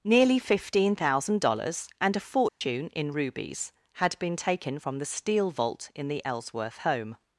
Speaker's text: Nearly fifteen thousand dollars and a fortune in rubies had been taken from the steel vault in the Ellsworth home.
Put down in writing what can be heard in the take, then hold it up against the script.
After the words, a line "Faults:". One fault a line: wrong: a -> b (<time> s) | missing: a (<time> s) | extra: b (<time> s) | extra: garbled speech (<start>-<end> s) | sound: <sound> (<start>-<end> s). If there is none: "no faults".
Nearly fifteen thousand dollars and a fortune in rubies had been taken from the steel vault in the Ellsworth home.
Faults:
sound: dropout (2.5-2.6 s)